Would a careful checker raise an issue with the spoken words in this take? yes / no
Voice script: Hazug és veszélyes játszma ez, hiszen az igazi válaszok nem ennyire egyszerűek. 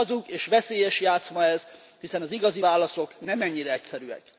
no